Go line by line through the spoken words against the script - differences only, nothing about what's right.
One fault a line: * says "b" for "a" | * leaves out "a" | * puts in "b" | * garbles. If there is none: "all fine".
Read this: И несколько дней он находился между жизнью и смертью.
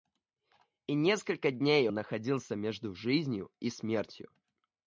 * leaves out "он"